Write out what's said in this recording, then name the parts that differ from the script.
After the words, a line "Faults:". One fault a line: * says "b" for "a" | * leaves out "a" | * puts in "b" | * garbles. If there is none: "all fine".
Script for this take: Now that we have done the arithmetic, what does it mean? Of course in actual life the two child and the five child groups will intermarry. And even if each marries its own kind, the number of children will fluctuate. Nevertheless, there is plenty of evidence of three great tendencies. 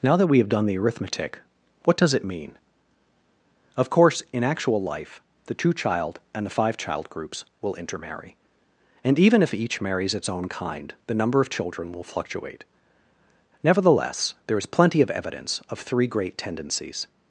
Now that we have done the arithmetic, what does it mean? Of course in actual life the two child and the five child groups will intermarry. And even if each marries its own kind, the number of children will fluctuate. Nevertheless, there is plenty of evidence of three great tendencies.
Faults:
all fine